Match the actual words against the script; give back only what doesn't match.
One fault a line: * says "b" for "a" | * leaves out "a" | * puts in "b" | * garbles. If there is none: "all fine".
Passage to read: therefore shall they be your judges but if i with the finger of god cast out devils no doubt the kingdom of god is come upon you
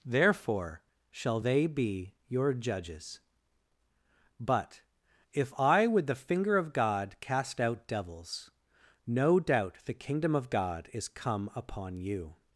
all fine